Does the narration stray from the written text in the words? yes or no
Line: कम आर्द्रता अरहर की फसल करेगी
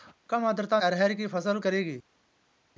no